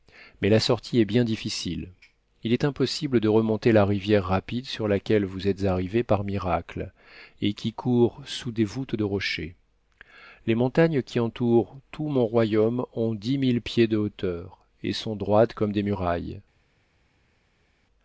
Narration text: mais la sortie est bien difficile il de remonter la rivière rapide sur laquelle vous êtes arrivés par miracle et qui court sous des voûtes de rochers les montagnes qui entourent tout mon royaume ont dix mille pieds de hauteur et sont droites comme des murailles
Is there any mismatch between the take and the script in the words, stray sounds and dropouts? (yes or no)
yes